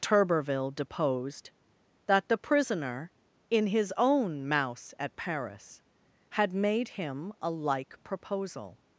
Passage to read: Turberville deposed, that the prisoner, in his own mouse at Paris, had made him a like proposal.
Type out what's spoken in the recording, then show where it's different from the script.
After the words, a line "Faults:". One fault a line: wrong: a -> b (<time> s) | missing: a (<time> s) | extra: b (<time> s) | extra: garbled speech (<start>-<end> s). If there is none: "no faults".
Turberville deposed, that the prisoner, in his own mouse at Paris, had made him a like proposal.
Faults:
no faults